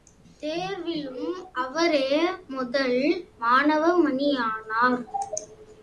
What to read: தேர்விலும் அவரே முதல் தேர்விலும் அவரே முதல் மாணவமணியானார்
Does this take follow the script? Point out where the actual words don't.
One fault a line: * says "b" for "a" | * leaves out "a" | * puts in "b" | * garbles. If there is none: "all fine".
* leaves out "தேர்விலும் அவரே முதல்"